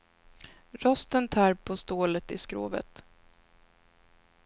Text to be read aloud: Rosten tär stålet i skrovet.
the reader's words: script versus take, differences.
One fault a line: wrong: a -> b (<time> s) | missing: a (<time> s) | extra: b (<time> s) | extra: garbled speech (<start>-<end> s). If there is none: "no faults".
extra: på (1.5 s)